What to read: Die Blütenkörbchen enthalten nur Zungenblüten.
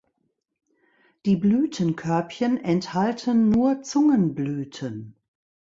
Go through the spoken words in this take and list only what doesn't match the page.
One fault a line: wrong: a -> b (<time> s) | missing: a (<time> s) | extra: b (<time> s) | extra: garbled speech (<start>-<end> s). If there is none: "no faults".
no faults